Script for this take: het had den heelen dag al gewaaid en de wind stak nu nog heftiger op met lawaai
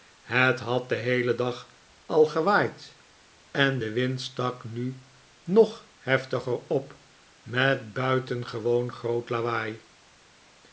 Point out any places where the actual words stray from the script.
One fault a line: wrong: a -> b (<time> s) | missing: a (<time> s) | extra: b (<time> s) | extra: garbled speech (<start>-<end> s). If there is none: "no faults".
extra: buitengewoon groot (7.9 s)